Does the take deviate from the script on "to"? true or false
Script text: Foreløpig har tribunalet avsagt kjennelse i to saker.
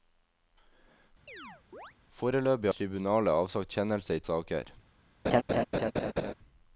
true